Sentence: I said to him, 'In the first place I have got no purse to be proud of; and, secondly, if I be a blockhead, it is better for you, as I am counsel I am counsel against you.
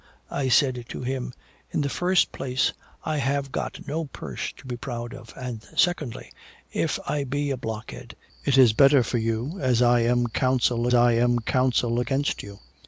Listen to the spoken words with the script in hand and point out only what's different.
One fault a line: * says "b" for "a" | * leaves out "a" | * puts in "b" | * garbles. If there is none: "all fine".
all fine